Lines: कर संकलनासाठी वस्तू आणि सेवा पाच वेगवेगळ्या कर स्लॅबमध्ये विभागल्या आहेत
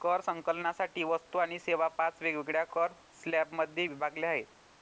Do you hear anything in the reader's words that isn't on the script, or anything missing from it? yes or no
no